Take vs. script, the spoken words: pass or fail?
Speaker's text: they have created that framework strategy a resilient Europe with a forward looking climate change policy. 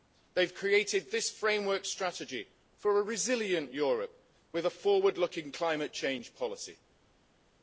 fail